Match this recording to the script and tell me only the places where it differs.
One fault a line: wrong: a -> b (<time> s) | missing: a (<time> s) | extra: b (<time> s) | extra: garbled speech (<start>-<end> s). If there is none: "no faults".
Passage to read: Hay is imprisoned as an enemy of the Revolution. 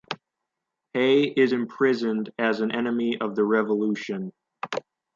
no faults